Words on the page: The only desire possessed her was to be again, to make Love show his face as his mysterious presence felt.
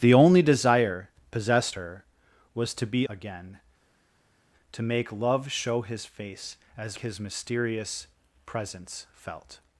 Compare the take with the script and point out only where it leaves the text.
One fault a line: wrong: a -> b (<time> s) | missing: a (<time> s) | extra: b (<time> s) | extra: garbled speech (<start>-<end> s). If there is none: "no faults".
no faults